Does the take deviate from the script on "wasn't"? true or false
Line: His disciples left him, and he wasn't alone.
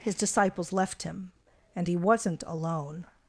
false